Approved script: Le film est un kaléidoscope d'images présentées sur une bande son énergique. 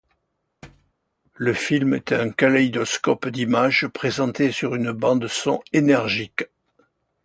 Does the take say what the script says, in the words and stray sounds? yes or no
no